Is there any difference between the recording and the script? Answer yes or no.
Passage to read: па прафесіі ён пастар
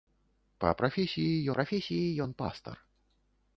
yes